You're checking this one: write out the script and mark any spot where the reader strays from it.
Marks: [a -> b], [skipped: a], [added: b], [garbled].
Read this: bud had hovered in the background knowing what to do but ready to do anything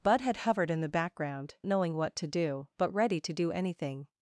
bud had hovered in the background knowing what to do but ready to do anything